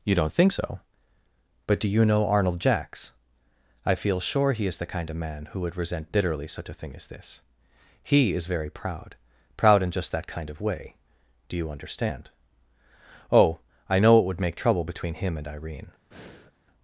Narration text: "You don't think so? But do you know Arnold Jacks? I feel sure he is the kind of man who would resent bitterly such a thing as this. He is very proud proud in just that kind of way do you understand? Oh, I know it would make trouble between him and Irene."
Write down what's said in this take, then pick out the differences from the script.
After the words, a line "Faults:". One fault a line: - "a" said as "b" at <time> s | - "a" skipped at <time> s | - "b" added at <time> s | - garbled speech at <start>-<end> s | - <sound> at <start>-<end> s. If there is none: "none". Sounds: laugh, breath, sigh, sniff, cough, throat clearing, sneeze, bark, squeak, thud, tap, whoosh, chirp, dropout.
"You don't think so? But do you know Arnold Jacks? I feel sure he is the kind of man who would resent bitterly such a thing as this. He is very proud proud in just that kind of way do you understand? Oh, I know it would make trouble between him and Irene."
Faults:
- breath at 16.1-16.5 s